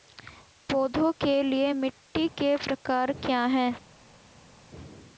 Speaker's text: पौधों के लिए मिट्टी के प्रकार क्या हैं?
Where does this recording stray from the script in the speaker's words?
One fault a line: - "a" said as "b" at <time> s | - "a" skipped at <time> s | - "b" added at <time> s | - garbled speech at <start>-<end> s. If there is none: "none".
none